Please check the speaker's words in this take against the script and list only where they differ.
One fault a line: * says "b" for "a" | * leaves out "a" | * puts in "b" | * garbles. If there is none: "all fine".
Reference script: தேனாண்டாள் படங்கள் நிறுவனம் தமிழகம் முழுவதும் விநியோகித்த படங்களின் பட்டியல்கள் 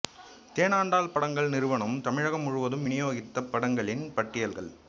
all fine